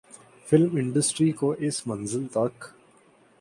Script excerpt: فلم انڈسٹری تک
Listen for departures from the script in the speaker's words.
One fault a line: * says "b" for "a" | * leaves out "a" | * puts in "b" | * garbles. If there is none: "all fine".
* puts in "کو اس منزل"